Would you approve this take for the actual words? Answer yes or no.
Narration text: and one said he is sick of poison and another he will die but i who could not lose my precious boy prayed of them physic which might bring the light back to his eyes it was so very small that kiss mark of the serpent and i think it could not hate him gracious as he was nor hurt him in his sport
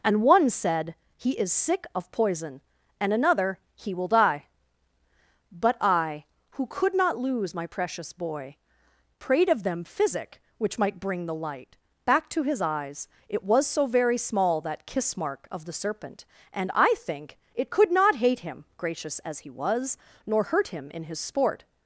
yes